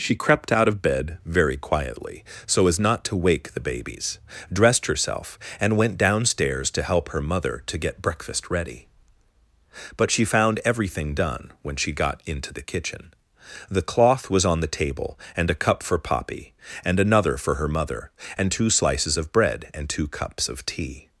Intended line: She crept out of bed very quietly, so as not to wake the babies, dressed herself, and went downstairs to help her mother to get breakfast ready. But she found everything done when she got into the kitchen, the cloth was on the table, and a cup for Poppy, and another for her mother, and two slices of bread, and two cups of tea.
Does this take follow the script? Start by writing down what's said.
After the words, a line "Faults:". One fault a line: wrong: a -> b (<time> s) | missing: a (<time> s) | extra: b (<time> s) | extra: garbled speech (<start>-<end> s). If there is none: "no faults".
She crept out of bed very quietly, so as not to wake the babies, dressed herself, and went downstairs to help her mother to get breakfast ready. But she found everything done when she got into the kitchen, the cloth was on the table, and a cup for Poppy, and another for her mother, and two slices of bread, and two cups of tea.
Faults:
no faults